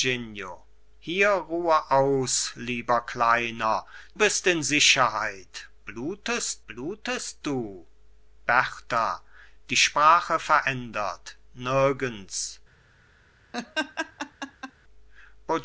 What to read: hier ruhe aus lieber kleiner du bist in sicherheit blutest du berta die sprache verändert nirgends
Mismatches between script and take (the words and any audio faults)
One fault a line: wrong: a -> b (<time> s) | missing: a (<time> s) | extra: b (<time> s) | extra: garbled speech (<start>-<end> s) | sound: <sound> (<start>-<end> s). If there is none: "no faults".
missing: du (3.9 s)
extra: blutest (6.7 s)
sound: laugh (13.5-14.7 s)